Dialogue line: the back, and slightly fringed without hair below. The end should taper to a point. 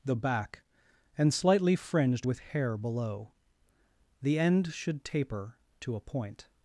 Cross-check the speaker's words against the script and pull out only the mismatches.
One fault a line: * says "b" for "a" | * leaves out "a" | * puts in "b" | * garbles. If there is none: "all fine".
* says "with" for "without"